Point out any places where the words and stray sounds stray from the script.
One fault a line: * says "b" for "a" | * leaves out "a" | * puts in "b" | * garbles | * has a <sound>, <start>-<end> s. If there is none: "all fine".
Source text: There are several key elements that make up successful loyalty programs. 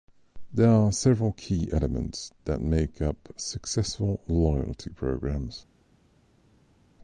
all fine